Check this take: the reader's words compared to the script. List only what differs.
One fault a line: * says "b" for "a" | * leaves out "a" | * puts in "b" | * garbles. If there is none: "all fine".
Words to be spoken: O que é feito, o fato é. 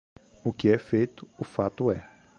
all fine